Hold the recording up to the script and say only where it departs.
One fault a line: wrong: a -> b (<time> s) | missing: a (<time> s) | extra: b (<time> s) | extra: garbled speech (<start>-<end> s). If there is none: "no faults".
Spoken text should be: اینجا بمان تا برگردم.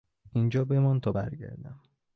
no faults